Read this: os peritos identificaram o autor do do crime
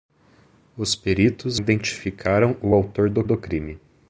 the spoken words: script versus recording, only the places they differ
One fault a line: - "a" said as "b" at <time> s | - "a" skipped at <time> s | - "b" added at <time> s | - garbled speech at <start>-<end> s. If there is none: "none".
none